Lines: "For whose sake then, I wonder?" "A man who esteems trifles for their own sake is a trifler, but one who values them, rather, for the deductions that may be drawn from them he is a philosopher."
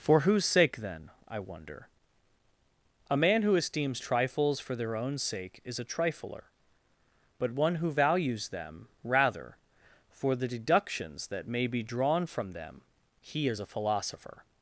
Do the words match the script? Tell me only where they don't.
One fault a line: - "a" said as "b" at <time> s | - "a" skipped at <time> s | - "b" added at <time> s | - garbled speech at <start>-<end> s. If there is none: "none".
none